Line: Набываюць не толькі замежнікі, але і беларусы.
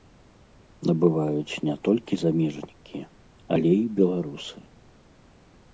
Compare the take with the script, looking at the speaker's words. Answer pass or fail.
pass